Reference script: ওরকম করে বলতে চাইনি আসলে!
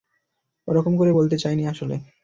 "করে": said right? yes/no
yes